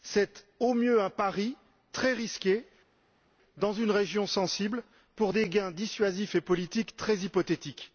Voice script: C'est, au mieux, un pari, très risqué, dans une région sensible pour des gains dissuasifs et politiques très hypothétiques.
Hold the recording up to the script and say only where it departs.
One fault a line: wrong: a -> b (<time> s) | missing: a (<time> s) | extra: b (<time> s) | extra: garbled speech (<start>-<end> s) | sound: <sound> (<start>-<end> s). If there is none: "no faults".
no faults